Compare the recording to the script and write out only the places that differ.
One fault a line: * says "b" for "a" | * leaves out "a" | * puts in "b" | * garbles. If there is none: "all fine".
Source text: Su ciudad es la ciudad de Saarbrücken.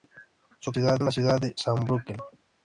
all fine